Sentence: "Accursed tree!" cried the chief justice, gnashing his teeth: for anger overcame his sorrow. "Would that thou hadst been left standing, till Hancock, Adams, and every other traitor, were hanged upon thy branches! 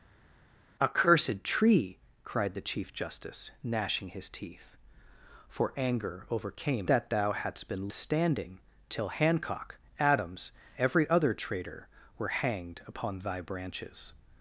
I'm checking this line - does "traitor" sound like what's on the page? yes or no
yes